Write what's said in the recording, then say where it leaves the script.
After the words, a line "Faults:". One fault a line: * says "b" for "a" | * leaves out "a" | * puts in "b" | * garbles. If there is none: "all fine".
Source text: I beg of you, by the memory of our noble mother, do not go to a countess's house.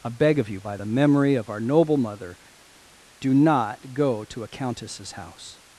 I beg of you, by the memory of our noble mother, do not go to a countess's house.
Faults:
all fine